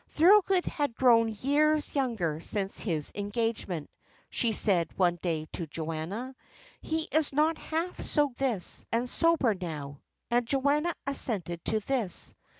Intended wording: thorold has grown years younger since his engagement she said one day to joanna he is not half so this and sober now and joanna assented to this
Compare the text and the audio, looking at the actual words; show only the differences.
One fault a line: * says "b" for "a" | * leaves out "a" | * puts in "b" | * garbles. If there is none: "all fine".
all fine